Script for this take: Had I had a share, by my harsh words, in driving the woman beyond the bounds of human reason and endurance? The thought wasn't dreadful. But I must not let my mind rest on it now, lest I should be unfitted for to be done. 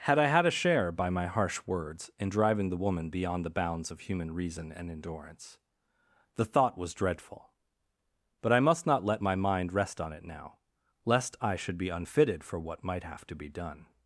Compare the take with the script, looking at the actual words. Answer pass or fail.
fail